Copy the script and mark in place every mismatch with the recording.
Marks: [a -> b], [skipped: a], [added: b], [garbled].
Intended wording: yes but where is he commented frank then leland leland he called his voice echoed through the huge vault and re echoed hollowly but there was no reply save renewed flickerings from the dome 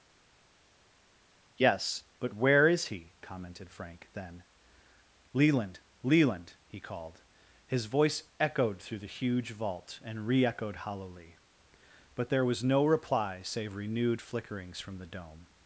yes but where is he commented frank then leland leland he called his voice echoed through the huge vault and re echoed hollowly but there was no reply save renewed flickerings from the dome